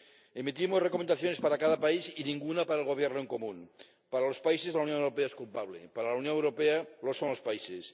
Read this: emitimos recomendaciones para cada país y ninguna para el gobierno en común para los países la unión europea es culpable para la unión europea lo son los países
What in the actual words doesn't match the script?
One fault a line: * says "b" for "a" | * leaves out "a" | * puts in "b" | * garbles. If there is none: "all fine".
all fine